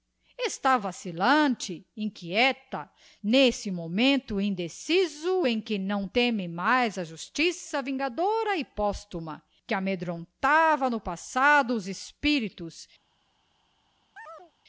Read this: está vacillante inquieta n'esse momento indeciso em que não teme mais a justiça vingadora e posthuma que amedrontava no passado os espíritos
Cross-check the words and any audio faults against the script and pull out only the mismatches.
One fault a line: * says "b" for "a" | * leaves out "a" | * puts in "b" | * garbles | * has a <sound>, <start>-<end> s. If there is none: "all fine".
* has a chirp, 14.2-14.5 s